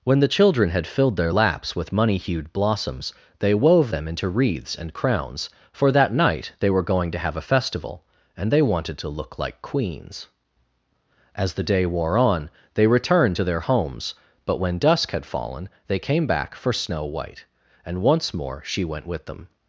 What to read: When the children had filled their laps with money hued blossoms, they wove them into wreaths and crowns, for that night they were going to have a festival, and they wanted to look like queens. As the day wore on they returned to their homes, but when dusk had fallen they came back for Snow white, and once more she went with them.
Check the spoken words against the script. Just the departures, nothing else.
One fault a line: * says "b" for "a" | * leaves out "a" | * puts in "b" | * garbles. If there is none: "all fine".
all fine